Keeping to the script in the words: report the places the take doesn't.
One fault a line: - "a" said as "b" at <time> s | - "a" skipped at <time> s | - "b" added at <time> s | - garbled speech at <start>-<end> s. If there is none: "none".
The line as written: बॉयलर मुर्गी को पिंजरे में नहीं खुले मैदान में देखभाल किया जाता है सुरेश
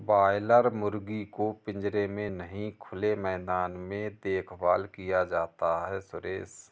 none